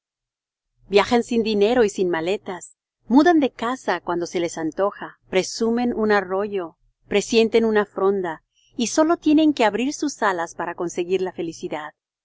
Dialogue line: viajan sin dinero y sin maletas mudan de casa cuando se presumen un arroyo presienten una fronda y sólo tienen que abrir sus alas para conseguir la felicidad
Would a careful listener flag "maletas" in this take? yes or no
no